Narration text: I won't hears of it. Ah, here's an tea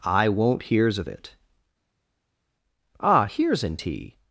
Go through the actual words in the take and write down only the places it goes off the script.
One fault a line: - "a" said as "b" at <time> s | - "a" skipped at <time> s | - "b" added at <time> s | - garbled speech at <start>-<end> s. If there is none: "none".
none